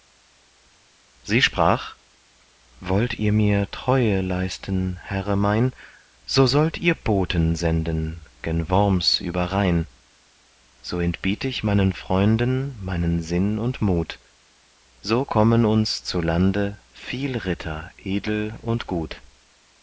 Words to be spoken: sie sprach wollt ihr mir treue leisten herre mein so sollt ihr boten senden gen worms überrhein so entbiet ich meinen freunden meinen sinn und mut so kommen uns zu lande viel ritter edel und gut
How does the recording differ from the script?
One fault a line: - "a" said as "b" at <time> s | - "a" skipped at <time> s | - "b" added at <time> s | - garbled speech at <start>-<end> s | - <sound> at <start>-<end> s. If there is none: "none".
none